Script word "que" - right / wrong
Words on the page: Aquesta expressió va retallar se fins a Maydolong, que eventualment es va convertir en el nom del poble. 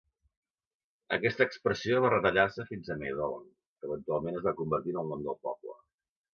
right